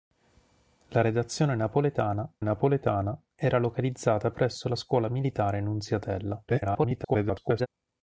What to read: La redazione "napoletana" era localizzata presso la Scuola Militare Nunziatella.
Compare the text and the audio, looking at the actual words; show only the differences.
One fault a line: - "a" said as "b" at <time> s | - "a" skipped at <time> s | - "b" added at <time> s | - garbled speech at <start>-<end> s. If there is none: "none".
- "napoletana" added at 2.4 s
- garbled speech at 6.5-7.7 s